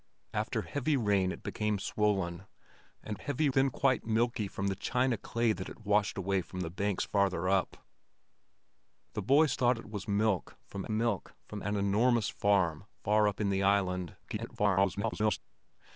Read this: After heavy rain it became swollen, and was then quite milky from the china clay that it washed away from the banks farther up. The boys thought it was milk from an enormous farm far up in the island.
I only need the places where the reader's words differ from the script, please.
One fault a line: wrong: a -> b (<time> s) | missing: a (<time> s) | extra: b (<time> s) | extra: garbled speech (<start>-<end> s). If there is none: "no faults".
wrong: was -> heavy (3.2 s)
extra: milk from (10.9 s)
extra: garbled speech (14.2-15.4 s)